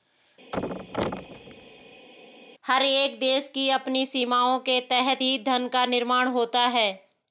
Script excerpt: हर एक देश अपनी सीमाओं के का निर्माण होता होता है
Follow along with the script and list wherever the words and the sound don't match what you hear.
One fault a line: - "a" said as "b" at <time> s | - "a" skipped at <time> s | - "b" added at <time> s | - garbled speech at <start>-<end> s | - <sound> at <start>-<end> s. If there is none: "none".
- thud at 0.5-2.1 s
- "की" added at 3.5 s
- "तहत ही धन" added at 4.9 s
- "होता" skipped at 6.7 s